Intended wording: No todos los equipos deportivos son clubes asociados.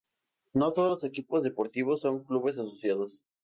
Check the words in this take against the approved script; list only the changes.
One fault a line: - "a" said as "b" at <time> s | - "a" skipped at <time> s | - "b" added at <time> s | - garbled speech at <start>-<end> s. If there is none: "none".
none